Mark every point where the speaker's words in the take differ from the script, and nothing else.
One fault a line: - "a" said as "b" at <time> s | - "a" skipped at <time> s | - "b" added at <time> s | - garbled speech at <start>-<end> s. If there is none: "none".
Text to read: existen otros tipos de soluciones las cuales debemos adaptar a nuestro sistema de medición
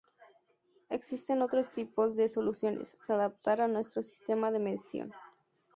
- "las cuales debemos" skipped at 3.0 s